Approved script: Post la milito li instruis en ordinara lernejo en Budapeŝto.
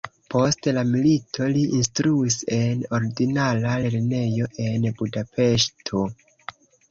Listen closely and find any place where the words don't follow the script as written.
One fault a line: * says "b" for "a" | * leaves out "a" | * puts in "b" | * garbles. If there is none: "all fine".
all fine